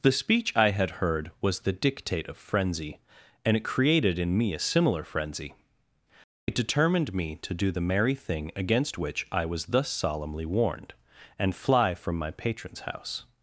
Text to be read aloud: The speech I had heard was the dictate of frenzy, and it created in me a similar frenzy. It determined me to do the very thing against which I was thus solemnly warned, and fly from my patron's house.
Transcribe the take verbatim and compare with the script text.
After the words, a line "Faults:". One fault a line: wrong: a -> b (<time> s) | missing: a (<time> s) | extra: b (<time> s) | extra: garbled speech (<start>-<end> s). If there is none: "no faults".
The speech I had heard was the dictate of frenzy, and it created in me a similar frenzy. It determined me to do the merry thing against which I was thus solemnly warned, and fly from my patron's house.
Faults:
wrong: very -> merry (7.8 s)